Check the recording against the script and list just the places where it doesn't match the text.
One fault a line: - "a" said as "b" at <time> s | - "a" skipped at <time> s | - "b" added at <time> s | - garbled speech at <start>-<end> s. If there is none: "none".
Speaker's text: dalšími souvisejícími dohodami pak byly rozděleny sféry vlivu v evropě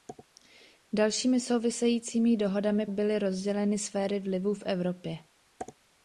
- "pak" skipped at 2.9 s